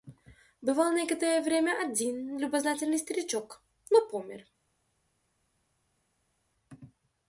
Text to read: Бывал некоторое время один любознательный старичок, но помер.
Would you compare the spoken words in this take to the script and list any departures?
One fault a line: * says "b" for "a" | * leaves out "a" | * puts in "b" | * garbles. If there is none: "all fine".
all fine